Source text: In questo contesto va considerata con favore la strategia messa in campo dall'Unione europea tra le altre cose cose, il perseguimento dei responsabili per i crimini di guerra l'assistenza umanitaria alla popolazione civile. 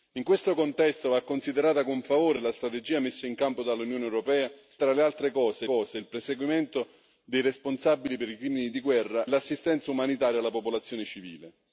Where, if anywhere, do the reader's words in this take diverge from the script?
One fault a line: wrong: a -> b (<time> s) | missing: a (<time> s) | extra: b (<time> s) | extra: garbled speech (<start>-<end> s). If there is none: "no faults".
no faults